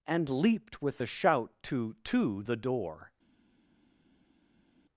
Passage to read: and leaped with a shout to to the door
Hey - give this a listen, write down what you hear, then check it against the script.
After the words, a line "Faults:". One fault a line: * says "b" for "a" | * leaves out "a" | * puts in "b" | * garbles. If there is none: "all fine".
and leaped with a shout to to the door
Faults:
all fine